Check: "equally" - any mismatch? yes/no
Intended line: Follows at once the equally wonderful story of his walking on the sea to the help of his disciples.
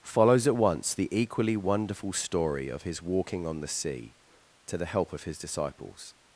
no